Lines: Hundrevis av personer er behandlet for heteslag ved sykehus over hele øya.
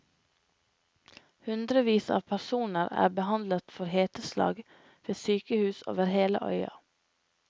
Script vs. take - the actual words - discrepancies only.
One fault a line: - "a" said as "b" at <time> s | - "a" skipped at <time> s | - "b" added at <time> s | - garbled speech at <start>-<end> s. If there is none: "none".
none